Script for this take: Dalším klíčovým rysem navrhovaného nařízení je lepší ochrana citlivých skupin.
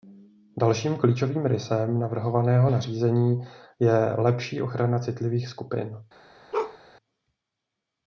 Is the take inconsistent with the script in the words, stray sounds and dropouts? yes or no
yes